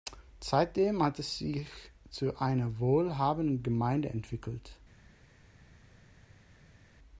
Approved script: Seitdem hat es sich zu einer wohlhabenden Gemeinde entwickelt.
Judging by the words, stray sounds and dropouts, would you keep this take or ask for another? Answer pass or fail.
pass